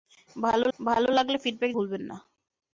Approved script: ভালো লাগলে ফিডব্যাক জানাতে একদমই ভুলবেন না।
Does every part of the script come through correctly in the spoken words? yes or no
no